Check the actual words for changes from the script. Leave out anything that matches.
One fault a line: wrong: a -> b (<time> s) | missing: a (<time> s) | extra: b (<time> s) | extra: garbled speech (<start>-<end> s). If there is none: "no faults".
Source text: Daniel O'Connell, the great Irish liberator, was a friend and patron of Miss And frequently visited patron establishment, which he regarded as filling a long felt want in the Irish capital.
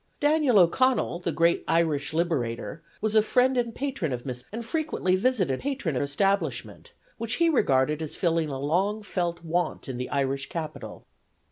no faults